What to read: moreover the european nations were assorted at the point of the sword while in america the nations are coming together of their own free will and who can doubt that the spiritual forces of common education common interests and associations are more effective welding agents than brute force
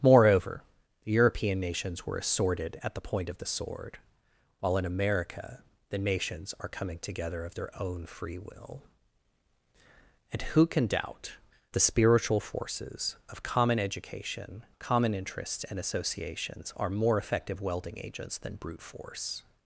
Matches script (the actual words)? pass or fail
fail